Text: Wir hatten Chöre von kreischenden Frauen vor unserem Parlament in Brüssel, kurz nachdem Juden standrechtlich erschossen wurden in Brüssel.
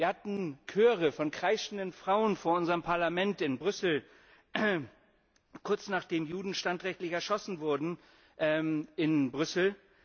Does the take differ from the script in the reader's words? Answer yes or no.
no